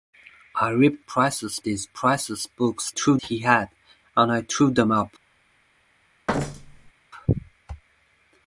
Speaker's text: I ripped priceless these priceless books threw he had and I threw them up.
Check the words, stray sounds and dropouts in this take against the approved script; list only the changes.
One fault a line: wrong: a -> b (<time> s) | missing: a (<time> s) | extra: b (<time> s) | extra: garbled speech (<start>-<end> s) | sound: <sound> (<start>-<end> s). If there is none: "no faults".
sound: thud (6.3-6.9 s)